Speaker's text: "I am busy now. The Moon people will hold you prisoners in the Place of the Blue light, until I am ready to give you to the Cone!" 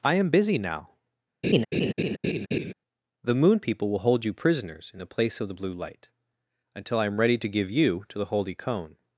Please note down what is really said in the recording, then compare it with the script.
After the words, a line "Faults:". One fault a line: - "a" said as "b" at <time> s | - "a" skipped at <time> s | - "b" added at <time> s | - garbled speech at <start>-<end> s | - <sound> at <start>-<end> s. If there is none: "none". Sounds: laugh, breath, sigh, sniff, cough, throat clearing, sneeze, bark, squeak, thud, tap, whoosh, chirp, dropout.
"I am busy now. The Moon people will hold you prisoners in the Place of the Blue light, until I am ready to give you to the holy Cone!"
Faults:
- laugh at 1.4-2.7 s
- "holy" added at 8.3 s